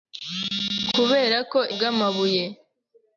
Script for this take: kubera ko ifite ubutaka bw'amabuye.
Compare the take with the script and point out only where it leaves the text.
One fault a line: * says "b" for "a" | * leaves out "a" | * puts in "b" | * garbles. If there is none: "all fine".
* leaves out "ifite ubutaka"